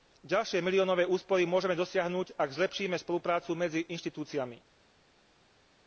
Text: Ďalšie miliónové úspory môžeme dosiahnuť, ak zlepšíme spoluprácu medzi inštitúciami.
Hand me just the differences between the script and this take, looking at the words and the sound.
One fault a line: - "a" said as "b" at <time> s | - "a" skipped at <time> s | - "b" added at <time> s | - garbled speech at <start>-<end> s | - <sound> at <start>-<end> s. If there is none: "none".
none